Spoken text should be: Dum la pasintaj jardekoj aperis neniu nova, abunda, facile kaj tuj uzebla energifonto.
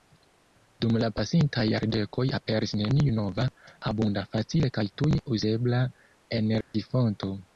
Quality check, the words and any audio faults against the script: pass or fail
fail